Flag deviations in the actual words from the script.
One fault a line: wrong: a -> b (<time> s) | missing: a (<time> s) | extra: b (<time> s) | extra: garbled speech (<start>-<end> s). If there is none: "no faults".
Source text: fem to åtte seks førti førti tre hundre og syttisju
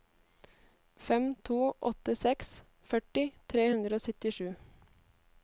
missing: førti (3.3 s)